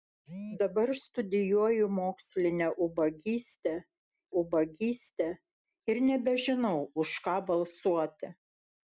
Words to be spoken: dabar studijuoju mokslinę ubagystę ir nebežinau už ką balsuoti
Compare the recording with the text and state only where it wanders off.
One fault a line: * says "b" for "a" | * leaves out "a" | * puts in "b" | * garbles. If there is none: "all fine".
* puts in "ubagystę"